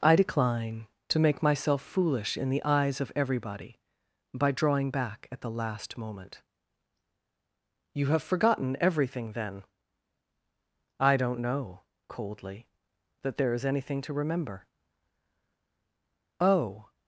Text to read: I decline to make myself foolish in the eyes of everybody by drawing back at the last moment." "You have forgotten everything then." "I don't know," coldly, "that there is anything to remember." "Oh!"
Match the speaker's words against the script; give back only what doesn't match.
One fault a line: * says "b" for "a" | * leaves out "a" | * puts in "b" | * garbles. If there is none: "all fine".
all fine